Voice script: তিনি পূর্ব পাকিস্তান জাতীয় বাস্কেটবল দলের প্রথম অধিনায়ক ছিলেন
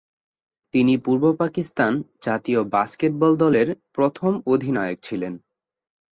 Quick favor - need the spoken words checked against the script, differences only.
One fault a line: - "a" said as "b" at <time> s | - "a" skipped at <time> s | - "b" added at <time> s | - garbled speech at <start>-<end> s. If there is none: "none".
none